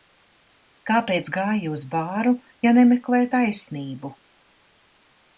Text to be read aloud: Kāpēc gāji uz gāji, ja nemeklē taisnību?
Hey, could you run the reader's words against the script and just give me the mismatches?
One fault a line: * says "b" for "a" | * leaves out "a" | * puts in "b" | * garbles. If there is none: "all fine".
* says "bāru" for "gāji"